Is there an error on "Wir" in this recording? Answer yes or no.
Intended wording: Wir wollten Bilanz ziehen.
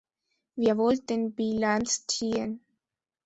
no